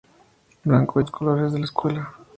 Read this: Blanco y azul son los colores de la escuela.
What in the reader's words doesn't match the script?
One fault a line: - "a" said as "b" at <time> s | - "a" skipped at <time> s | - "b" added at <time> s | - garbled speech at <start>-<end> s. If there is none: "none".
- "y azul son" skipped at 1.0 s